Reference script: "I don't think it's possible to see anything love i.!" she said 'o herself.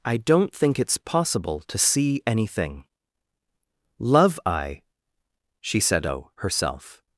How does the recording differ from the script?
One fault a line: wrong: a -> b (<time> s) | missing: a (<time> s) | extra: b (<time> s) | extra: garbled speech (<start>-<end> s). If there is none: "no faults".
no faults